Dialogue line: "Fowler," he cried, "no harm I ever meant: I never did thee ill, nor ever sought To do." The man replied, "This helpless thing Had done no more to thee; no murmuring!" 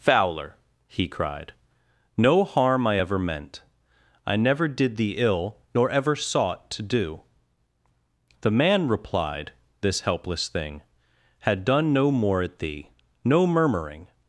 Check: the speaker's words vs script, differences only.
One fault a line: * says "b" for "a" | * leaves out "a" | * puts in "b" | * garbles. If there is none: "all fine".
* says "at" for "to"